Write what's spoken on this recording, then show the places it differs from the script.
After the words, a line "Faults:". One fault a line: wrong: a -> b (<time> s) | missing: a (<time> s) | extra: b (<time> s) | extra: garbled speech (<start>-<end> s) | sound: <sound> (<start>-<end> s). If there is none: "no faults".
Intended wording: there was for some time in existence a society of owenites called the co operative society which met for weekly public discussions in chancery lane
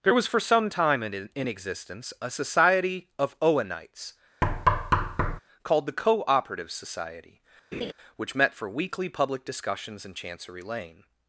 there was for some time in in existence a society of owenites called the co operative society which met for weekly public discussions in chancery lane
Faults:
extra: in (1.4 s)
sound: thud (4.4-5.4 s)
sound: laugh (7.7-7.9 s)